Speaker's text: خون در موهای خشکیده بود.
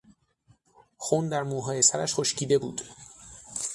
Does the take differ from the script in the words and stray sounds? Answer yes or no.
yes